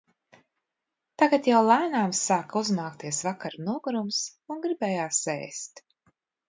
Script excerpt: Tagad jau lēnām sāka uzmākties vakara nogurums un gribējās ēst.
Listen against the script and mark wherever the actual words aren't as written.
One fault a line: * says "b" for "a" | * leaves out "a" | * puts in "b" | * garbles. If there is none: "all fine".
all fine